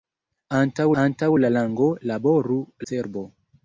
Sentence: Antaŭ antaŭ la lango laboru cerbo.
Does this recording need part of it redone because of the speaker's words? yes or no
no